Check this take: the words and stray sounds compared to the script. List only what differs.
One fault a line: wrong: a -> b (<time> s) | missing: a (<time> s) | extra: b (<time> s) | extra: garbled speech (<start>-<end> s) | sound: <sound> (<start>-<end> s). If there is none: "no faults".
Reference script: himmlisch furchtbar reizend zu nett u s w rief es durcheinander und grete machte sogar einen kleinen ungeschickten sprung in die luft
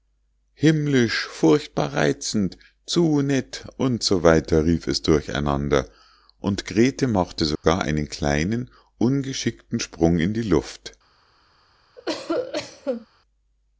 sound: dropout (7.6-7.6 s)
sound: cough (12.0-13.1 s)